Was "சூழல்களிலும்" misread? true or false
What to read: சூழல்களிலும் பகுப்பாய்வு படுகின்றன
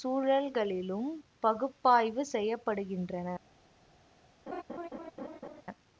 false